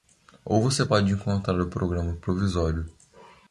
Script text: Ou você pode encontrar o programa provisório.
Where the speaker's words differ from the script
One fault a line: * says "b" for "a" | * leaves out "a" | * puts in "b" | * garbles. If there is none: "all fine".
all fine